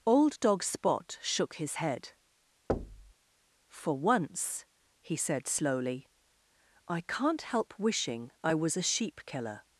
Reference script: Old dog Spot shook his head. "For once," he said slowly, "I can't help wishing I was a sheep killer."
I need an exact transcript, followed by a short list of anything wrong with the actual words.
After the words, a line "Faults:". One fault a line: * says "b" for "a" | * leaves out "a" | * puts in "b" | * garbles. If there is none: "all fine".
Old dog Spot shook his head. "For once," he said slowly, "I can't help wishing I was a sheep killer."
Faults:
all fine